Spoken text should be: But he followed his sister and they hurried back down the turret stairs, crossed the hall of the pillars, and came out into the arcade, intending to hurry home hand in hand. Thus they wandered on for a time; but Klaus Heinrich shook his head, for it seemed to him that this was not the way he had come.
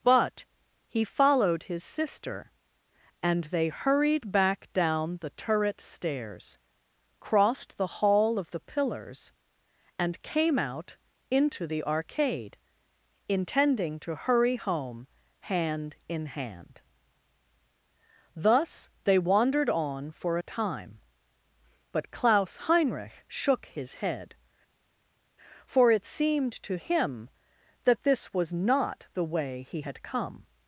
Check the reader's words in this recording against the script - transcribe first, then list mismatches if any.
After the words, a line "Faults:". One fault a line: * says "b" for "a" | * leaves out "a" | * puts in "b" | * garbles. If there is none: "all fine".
But he followed his sister and they hurried back down the turret stairs, crossed the hall of the pillars, and came out into the arcade, intending to hurry home hand in hand. Thus they wandered on for a time; but Klaus Heinrich shook his head, for it seemed to him that this was not the way he had come.
Faults:
all fine